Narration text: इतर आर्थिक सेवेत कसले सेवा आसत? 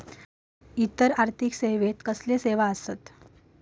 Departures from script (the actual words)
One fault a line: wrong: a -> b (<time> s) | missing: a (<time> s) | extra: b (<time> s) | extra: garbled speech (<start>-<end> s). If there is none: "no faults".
no faults